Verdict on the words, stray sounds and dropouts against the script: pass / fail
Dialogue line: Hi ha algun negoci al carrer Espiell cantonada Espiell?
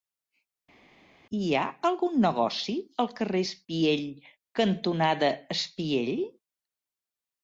pass